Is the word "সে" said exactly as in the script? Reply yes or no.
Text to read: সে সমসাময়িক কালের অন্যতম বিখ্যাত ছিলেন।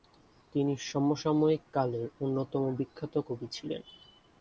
no